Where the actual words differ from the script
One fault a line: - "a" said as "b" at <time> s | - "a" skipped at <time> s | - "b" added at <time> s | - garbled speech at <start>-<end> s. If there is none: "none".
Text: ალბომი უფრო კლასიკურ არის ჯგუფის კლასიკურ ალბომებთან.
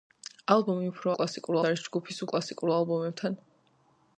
none